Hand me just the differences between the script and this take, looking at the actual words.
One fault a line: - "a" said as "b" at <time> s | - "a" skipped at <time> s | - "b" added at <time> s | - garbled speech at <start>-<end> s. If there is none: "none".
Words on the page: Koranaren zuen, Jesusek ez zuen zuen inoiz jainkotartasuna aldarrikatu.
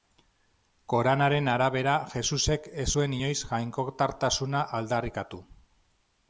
- "zuen" said as "arabera" at 1.6 s
- "zuen" skipped at 3.2 s